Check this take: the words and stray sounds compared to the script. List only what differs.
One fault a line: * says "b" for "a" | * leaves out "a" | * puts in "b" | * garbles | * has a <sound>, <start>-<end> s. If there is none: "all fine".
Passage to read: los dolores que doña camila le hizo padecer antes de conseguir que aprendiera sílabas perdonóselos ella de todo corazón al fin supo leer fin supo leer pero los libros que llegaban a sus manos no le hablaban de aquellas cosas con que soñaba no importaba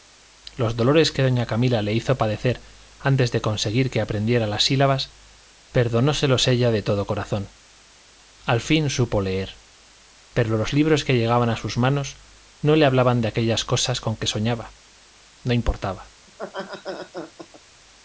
* puts in "las"
* leaves out "fin supo leer"
* has a laugh, 16.3-17.6 s